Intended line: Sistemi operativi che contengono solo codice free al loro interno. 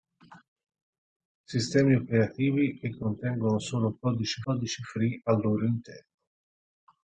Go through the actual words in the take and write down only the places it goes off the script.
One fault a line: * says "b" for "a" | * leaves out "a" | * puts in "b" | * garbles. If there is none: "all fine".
* puts in "codice"